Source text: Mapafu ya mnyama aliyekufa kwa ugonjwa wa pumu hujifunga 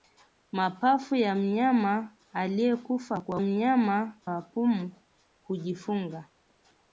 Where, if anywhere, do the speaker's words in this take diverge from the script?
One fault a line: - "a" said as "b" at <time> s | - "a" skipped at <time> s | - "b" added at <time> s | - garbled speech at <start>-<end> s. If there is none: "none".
- "ugonjwa" said as "mnyama" at 3.4 s